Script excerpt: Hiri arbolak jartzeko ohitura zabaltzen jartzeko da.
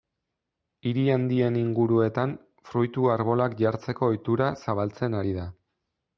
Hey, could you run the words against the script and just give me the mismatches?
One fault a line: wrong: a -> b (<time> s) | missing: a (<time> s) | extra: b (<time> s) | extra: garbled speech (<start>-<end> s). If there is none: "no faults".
extra: handien inguruetan fruitu (1.1 s)
wrong: jartzeko -> ari (5.2 s)